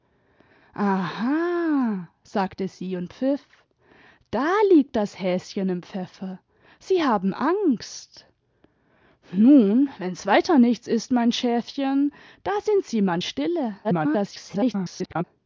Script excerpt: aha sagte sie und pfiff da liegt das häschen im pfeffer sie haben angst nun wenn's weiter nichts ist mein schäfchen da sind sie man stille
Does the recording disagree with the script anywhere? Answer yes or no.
yes